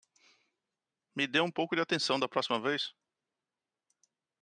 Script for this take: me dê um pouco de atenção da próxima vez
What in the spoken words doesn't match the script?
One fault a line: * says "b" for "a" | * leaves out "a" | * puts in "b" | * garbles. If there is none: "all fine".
all fine